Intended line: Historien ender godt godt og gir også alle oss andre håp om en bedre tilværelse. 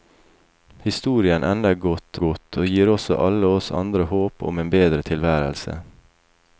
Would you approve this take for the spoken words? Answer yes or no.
yes